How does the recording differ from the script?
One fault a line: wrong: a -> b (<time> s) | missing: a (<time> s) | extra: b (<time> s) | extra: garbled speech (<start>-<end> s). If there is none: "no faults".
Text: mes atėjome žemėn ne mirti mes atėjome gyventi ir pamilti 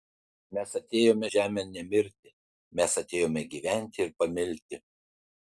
no faults